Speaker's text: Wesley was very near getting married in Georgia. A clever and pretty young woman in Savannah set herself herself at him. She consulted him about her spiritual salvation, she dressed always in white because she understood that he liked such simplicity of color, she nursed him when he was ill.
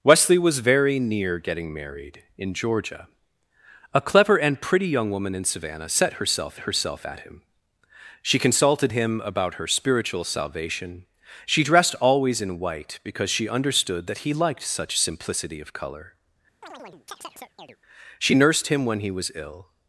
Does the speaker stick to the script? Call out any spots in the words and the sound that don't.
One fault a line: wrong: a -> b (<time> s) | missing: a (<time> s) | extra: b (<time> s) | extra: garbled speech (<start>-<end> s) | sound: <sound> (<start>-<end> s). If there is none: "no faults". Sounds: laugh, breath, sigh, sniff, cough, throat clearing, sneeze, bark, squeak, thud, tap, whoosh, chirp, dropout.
sound: chirp (16.6-17.8 s)